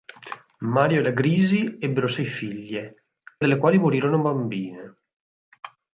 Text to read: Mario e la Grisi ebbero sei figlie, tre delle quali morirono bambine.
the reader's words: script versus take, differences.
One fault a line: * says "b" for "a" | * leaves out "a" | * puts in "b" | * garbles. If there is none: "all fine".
* leaves out "tre"